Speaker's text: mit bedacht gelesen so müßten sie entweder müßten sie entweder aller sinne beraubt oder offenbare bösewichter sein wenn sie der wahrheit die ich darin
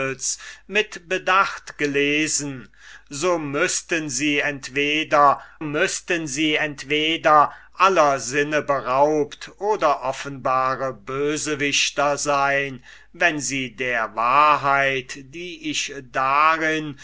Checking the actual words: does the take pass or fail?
pass